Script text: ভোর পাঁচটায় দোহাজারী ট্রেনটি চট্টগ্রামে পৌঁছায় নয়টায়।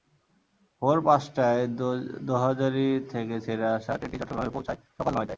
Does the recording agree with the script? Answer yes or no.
no